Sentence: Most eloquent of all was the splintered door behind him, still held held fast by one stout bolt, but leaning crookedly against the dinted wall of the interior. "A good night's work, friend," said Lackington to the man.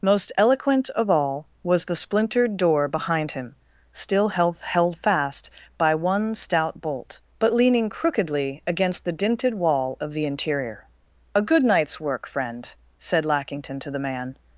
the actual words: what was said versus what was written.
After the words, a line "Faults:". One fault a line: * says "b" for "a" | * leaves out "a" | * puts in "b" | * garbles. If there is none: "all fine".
Most eloquent of all was the splintered door behind him, still held held fast by one stout bolt, but leaning crookedly against the dinted wall of the interior. "A good night's work, friend," said Lackington to the man.
Faults:
all fine